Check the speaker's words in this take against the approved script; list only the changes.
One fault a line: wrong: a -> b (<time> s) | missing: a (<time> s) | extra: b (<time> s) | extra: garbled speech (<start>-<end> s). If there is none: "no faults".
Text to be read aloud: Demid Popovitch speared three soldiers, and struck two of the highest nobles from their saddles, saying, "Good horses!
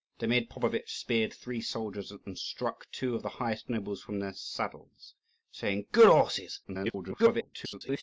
extra: garbled speech (6.6-8.0 s)